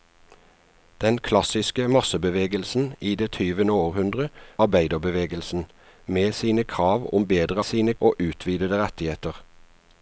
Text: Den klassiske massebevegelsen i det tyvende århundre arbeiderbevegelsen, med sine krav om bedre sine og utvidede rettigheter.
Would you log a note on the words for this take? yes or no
no